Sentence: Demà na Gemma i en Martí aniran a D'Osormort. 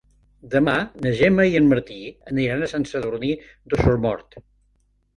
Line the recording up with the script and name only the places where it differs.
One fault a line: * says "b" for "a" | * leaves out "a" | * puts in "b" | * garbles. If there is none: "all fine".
* puts in "Sant Sadurní"